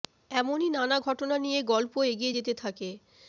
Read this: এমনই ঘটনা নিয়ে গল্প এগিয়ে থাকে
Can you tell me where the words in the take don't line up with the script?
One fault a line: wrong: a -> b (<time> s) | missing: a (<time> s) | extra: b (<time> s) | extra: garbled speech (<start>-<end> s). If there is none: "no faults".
extra: নানা (0.7 s)
extra: যেতে (2.4 s)